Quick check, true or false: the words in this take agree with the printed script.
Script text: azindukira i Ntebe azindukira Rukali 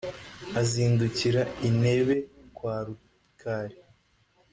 false